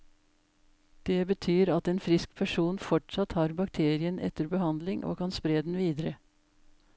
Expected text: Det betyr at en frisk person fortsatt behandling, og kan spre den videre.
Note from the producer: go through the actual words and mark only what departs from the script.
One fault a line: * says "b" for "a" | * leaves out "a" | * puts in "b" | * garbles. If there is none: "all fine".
* puts in "har bakterien etter"